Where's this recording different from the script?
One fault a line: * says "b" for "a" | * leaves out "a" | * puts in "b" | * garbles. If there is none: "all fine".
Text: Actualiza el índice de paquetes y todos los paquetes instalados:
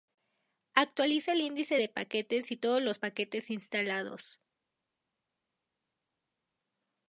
all fine